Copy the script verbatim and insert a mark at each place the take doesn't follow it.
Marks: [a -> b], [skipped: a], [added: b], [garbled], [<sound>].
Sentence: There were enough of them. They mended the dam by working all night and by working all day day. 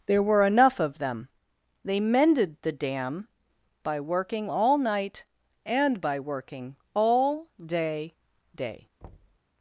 There were enough of them. They mended the dam by working all night and by working all day day. [thud]